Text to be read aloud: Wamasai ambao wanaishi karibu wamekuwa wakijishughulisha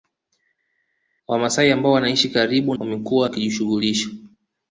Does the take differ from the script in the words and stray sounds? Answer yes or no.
no